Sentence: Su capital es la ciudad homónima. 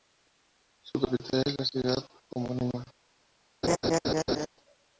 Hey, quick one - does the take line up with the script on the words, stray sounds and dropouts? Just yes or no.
no